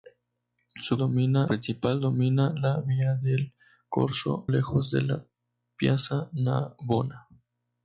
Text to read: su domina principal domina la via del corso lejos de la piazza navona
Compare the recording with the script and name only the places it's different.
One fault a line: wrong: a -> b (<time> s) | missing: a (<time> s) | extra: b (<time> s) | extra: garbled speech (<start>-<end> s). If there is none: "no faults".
no faults